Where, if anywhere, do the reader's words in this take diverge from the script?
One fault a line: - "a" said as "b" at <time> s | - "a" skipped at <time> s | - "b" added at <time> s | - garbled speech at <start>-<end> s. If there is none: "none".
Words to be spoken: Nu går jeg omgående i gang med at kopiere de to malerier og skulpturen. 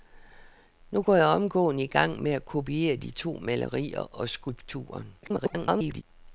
- garbled speech at 5.2-6.0 s